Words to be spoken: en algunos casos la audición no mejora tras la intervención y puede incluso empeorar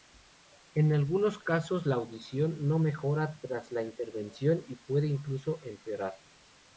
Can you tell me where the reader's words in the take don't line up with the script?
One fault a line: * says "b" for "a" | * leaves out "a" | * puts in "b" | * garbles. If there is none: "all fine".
all fine